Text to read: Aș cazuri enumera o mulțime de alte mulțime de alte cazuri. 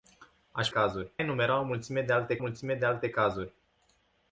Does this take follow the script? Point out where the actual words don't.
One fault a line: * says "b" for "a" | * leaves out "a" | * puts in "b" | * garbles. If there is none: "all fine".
all fine